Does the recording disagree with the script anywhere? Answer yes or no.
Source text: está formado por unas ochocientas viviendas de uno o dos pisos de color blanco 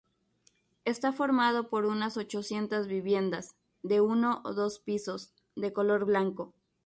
no